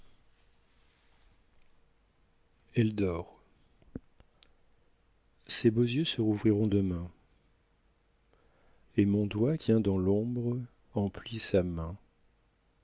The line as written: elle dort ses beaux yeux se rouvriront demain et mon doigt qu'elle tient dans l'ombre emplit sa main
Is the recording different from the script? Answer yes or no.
yes